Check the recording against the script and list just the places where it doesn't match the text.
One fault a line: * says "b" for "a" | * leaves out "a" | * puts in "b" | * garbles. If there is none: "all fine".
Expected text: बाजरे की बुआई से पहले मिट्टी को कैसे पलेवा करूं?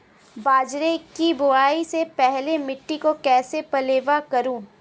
all fine